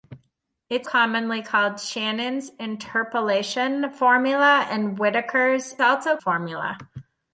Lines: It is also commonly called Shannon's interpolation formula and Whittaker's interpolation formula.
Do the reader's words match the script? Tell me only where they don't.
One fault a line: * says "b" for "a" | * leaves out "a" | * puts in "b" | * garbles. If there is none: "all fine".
* leaves out "also"
* says "also" for "interpolation"